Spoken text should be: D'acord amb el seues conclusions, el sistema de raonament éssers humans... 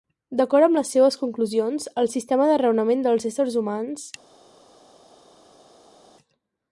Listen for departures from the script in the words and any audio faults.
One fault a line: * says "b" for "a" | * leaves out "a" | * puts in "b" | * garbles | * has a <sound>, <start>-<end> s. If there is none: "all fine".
* says "les" for "el"
* puts in "dels"